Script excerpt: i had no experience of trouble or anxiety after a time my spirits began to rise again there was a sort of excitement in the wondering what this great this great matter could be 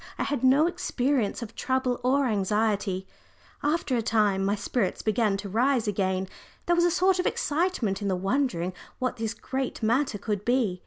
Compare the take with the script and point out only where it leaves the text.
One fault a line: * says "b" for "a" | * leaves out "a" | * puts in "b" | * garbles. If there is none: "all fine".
* leaves out "this great"